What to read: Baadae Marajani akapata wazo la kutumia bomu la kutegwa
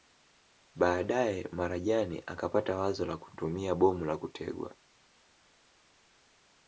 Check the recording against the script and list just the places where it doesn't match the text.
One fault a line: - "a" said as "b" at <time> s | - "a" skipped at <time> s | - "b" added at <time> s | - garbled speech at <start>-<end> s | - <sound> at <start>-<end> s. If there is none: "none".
none